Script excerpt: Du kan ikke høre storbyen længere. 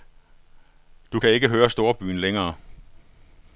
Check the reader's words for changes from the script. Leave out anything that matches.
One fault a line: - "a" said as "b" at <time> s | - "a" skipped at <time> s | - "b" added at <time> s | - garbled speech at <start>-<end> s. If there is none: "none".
none